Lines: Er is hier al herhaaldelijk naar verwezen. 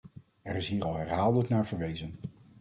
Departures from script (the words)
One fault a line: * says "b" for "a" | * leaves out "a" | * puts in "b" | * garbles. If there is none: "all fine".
all fine